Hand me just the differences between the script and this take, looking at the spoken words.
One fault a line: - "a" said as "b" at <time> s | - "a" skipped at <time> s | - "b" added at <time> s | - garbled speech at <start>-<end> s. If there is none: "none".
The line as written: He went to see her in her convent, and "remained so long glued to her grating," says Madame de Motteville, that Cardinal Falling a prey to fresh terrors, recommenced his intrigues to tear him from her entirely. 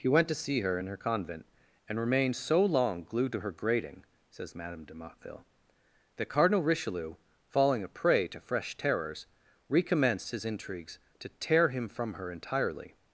- "Richelieu" added at 6.6 s